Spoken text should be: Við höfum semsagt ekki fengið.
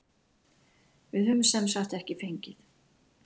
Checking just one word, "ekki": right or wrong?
right